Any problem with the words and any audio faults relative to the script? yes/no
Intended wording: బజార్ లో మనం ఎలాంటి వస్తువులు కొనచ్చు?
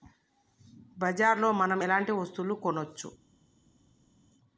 no